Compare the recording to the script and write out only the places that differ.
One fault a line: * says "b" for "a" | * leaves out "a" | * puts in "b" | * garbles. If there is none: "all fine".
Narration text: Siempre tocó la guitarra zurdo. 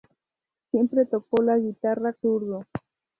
all fine